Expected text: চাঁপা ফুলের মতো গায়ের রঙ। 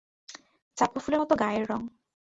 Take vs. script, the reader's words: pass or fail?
pass